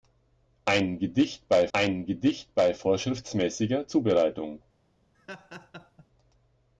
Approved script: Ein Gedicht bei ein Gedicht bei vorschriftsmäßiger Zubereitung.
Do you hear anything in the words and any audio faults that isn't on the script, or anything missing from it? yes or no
yes